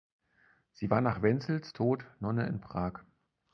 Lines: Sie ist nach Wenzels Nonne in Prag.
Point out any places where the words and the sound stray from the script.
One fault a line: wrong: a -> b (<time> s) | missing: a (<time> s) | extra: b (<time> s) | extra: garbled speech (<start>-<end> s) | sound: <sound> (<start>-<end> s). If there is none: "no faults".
wrong: ist -> war (0.9 s)
extra: Tod (1.7 s)